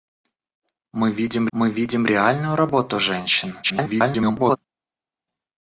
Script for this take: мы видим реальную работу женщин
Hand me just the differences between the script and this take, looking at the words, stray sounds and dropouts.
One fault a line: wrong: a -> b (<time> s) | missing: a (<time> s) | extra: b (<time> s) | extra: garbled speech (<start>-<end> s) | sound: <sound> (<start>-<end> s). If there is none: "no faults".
extra: мы видим (1.5 s)
extra: garbled speech (3.6-4.6 s)